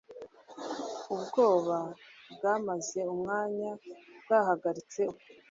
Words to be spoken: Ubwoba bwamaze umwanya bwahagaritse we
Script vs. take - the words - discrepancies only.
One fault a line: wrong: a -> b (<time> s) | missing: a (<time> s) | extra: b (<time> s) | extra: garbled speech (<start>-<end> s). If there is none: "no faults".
no faults